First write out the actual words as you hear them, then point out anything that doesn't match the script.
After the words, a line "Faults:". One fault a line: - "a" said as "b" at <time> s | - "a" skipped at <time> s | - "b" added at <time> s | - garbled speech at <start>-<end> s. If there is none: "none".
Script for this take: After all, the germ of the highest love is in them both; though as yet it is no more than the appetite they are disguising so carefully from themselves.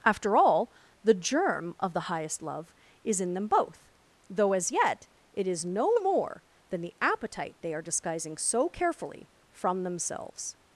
After all, the germ of the highest love is in them both; though as yet it is no more than the appetite they are disguising so carefully from themselves.
Faults:
none